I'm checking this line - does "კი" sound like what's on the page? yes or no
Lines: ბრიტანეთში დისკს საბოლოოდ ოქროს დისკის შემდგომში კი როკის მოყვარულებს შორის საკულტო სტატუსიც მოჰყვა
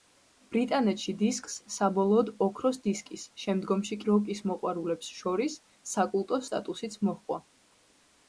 no